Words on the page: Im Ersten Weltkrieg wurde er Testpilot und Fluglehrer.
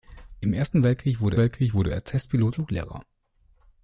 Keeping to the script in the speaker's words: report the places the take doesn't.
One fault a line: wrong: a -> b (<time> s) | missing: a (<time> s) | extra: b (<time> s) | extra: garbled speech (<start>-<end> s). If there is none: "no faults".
extra: Weltkrieg wurde (1.4 s)
missing: und (2.5 s)